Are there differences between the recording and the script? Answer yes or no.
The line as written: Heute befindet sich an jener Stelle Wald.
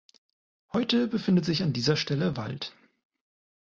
yes